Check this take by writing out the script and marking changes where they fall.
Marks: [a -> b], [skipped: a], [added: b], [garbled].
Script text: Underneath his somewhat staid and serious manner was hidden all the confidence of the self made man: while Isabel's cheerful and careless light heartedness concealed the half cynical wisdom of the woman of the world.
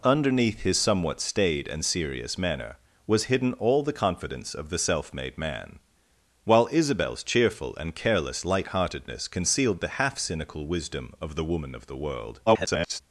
Underneath his somewhat staid and serious manner was hidden all the confidence of the self made man: while Isabel's cheerful and careless light heartedness concealed the half cynical wisdom of the woman of the world. [garbled]